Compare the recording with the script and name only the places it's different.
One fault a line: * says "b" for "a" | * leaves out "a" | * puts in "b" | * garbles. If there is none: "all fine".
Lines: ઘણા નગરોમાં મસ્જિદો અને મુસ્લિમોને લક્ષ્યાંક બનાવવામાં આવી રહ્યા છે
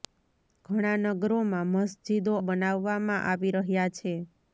* leaves out "અને મુસ્લિમોને લક્ષ્યાંક"